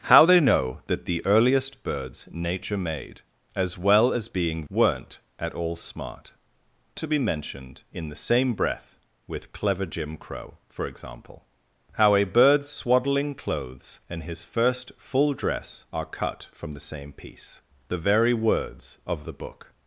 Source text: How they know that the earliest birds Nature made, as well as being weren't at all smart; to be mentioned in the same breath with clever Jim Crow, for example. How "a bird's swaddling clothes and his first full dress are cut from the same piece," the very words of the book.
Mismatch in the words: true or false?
false